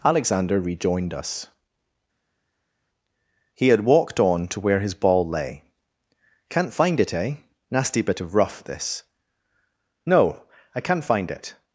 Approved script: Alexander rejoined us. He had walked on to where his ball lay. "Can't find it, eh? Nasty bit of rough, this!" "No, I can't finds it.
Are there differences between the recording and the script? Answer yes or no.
yes